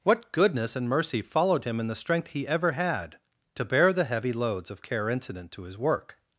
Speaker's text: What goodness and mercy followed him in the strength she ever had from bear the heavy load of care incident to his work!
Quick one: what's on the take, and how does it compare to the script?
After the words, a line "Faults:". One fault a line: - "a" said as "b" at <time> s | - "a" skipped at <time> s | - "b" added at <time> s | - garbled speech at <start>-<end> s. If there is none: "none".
What goodness and mercy followed him in the strength he ever had to bear the heavy loads of care incident to his work!
Faults:
- "she" said as "he" at 2.3 s
- "from" said as "to" at 3.6 s
- "load" said as "loads" at 4.3 s